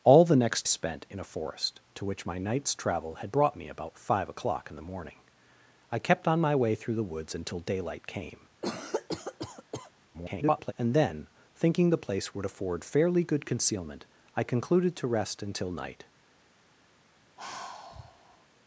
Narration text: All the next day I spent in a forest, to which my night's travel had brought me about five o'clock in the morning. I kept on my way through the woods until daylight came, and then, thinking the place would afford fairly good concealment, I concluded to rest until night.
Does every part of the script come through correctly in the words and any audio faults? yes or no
no